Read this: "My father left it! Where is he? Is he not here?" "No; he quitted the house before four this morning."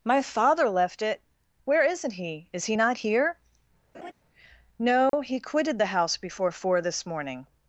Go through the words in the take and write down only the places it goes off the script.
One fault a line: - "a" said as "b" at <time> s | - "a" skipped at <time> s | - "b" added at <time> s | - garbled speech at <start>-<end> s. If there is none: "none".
- "is" said as "isn't" at 1.8 s